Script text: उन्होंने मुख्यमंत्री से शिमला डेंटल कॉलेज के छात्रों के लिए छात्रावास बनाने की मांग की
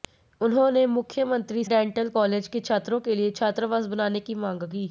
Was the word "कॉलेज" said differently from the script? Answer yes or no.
no